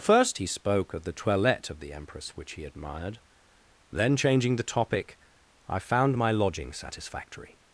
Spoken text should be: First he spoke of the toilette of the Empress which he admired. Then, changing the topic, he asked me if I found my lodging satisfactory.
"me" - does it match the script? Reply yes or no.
no